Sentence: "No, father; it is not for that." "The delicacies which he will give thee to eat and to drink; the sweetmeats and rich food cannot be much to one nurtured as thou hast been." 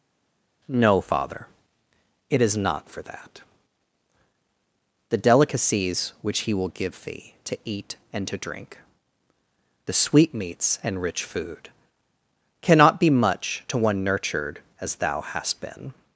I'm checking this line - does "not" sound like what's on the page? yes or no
yes